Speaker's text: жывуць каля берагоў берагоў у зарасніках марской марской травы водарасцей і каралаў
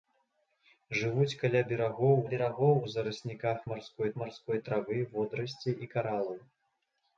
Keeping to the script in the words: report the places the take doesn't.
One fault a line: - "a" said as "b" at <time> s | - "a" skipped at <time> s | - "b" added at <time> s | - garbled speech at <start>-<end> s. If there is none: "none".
none